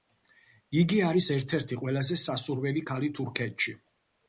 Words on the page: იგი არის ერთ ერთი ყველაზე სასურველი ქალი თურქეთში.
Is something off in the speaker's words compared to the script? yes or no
no